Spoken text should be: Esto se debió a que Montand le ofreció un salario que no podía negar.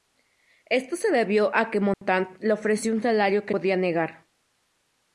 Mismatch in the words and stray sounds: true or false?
true